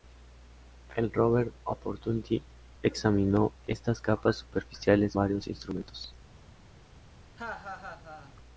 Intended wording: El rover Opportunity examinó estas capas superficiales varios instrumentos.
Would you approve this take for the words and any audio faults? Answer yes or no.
no